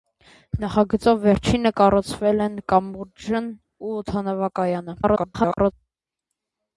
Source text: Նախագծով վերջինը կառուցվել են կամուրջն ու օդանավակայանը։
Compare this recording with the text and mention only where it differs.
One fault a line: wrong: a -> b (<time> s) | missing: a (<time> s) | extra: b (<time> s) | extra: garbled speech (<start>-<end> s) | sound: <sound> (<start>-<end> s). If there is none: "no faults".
extra: garbled speech (5.0-5.7 s)